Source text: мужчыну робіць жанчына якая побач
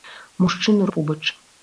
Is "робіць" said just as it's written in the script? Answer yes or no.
no